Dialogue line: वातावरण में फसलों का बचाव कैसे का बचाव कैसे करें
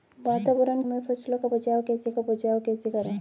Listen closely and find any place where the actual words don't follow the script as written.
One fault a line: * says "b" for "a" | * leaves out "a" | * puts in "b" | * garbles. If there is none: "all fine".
all fine